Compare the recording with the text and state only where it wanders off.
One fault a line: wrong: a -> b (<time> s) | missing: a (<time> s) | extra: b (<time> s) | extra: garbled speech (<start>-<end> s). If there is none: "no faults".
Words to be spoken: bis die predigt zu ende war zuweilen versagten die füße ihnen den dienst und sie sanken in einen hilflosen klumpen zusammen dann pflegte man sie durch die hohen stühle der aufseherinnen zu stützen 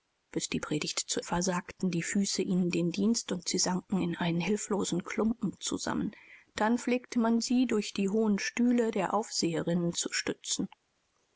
missing: ende war zuweilen (1.2 s)